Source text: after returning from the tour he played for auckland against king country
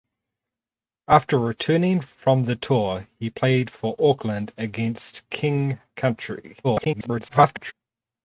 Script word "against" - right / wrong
right